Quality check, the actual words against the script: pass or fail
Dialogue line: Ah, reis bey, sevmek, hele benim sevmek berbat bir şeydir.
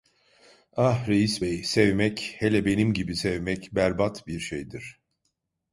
fail